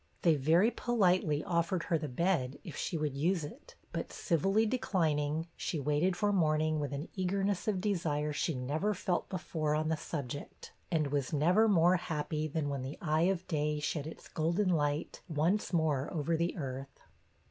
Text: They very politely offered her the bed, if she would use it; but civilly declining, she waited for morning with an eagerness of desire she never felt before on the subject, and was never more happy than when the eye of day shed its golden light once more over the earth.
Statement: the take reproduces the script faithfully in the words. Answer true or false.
true